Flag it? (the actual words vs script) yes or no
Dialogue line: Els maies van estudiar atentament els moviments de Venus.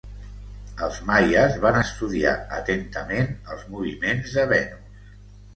no